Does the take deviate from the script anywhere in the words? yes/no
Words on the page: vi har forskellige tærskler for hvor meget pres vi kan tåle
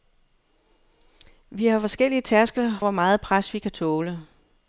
yes